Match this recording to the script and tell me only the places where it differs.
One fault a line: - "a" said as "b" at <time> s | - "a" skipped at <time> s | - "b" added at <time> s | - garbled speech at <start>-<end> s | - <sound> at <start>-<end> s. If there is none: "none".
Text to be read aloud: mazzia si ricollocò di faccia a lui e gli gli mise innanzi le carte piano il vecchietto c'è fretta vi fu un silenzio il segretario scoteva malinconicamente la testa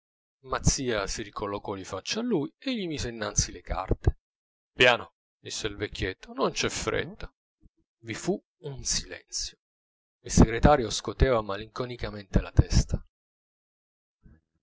- "gli" skipped at 2.9 s
- "disse" added at 5.4 s
- "non" added at 6.3 s